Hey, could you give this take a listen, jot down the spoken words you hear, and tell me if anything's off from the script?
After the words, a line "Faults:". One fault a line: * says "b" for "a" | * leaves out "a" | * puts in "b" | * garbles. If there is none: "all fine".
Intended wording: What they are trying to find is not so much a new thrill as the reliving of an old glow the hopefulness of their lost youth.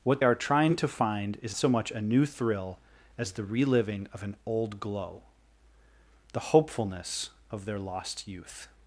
What are trying to find is so much a new thrill as the reliving of an old glow the hopefulness of their lost youth.
Faults:
* leaves out "they"
* leaves out "not"